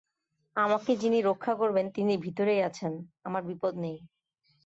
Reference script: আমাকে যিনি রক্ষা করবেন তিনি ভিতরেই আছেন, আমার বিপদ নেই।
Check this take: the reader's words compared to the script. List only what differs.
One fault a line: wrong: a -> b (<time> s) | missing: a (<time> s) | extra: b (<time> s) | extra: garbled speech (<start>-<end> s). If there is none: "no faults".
no faults